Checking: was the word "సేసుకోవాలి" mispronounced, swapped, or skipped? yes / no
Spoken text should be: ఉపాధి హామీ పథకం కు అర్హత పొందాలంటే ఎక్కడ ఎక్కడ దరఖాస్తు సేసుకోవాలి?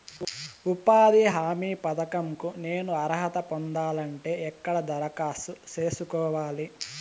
no